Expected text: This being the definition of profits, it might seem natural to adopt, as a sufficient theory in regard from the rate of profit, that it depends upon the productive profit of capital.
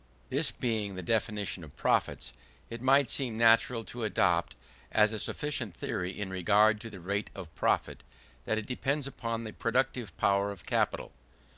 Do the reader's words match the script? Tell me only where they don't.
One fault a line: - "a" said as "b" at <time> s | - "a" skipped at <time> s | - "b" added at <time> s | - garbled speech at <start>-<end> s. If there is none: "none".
- "from" said as "to" at 6.8 s
- "profit" said as "power" at 10.2 s